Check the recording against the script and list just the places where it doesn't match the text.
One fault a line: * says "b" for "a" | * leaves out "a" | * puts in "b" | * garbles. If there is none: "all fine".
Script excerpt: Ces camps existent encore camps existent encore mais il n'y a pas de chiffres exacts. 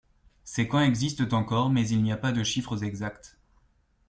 * leaves out "camps existent encore"